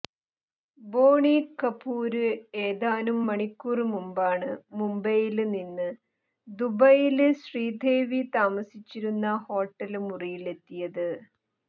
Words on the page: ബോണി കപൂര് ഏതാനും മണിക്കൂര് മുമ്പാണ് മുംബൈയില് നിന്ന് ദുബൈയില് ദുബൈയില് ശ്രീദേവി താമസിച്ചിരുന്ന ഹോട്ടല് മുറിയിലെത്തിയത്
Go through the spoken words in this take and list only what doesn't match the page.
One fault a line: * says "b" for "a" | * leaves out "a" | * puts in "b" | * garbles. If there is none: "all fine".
* leaves out "ദുബൈയില്"